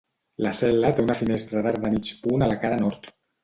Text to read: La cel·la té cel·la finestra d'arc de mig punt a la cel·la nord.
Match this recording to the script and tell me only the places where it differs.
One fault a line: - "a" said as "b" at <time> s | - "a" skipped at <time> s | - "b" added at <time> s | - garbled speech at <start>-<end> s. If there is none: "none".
- "cel·la" said as "una" at 1.1 s
- "cel·la" said as "cara" at 2.7 s